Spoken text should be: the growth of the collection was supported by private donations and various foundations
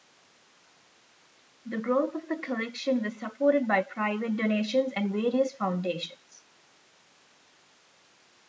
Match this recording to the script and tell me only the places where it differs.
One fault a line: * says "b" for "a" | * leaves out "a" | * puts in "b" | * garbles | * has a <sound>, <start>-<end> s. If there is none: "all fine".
all fine